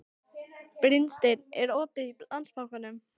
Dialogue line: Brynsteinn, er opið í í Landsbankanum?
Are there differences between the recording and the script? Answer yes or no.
yes